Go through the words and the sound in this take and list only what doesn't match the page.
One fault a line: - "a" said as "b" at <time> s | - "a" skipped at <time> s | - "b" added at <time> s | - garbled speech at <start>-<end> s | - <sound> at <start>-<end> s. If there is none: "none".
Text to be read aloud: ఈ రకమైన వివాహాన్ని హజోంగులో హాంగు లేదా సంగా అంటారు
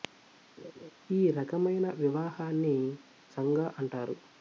- laugh at 0.6-0.9 s
- "హజోంగులో హాంగు లేదా" skipped at 2.8 s